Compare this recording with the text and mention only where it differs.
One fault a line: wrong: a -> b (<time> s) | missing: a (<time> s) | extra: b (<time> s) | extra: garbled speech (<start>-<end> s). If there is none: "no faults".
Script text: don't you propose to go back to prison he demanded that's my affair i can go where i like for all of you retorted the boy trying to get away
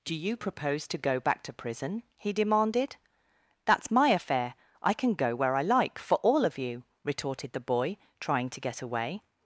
wrong: don't -> do (0.0 s)